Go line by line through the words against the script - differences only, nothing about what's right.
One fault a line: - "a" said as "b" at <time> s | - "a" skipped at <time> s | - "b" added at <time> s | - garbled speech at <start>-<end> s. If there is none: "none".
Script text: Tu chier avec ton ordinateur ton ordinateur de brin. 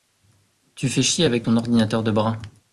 - "fais" added at 0.9 s
- "ton ordinateur" skipped at 2.0 s